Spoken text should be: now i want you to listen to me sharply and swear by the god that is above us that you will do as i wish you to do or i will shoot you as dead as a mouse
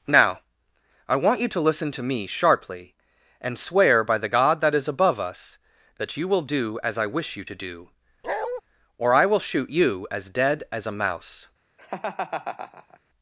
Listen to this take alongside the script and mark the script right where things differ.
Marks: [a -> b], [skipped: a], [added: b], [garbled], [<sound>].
now i want you to listen to me sharply and swear by the god that is above us that you will do as i wish you to do [bark] or i will shoot you as dead as a mouse [laugh]